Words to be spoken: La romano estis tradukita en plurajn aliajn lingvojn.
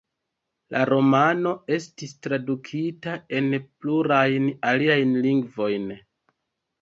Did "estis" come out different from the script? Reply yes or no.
no